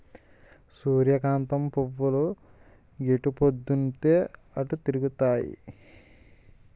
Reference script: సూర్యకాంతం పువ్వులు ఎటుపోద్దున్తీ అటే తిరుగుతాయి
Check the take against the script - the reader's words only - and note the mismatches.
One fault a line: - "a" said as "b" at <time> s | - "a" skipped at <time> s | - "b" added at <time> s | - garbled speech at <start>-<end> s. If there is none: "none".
none